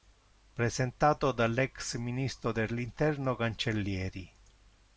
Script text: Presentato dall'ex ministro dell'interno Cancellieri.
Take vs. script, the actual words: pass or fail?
pass